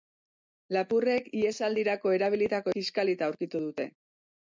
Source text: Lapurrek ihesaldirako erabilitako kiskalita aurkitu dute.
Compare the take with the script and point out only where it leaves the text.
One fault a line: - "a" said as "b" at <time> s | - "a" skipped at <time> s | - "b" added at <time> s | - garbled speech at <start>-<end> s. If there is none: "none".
none